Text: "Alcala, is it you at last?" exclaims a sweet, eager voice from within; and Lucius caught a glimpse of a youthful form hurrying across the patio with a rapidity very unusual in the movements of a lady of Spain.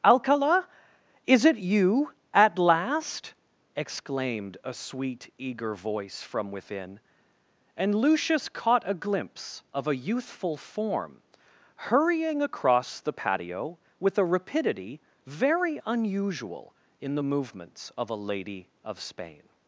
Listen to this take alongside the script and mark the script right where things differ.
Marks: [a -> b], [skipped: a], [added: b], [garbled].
"Alcala, is it you at last?" [exclaims -> exclaimed] a sweet, eager voice from within; and Lucius caught a glimpse of a youthful form hurrying across the patio with a rapidity very unusual in the movements of a lady of Spain.